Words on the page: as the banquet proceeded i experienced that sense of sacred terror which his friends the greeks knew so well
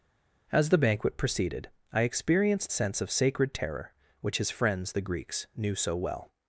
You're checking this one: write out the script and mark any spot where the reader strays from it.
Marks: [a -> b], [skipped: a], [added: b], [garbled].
as the banquet proceeded i experienced [skipped: that] sense of sacred terror which his friends the greeks knew so well